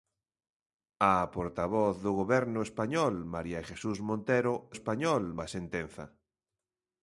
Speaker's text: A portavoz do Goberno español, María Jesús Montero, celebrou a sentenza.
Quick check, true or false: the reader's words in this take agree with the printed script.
false